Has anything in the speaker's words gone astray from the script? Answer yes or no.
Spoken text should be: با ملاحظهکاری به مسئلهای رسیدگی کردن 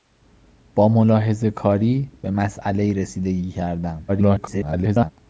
yes